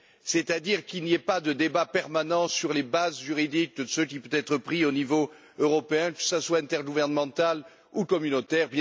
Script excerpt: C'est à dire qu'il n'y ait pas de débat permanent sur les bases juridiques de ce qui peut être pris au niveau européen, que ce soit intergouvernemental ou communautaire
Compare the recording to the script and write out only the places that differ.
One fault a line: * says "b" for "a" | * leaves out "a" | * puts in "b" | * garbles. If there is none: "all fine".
all fine